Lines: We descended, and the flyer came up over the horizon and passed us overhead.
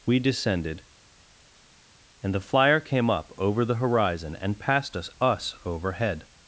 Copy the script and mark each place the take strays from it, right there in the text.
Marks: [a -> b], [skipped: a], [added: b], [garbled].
We descended, and the flyer came up over the horizon and passed us [added: us] overhead.